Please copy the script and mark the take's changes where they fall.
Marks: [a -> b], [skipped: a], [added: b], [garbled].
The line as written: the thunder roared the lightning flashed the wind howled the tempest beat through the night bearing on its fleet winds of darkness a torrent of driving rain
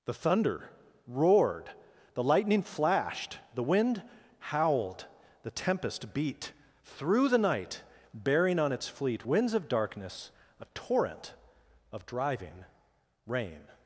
the thunder roared the lightning flashed the wind howled the tempest beat through the night bearing on its fleet winds of darkness a torrent of driving rain